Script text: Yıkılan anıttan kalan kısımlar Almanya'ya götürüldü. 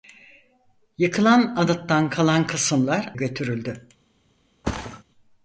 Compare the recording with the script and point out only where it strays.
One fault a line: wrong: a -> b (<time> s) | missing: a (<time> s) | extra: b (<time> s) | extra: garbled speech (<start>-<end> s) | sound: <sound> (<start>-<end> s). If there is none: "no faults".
missing: Almanya'ya (3.1 s)
sound: thud (4.6-5.0 s)